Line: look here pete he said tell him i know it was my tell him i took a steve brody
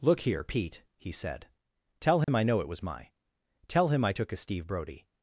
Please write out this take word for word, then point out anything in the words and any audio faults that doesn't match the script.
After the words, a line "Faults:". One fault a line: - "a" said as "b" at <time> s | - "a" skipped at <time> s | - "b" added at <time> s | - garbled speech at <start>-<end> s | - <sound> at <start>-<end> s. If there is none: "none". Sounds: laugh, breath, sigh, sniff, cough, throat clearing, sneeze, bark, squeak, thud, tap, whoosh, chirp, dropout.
look here pete he said tell him i know it was my tell him i took a steve brody
Faults:
- dropout at 2.2-2.3 s